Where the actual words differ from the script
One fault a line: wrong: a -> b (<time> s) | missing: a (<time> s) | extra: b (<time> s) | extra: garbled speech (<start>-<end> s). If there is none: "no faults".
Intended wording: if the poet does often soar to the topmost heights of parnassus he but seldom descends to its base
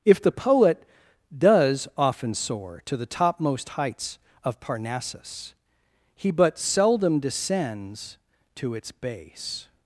no faults